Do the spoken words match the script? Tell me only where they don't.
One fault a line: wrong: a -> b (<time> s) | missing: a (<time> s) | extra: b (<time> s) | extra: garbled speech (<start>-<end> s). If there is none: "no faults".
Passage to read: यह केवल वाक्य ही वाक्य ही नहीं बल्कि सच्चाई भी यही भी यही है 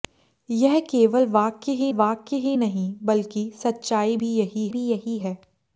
no faults